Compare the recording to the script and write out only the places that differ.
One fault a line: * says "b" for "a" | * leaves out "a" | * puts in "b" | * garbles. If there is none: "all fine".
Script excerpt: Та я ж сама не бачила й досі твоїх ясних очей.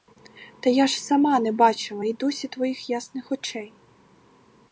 all fine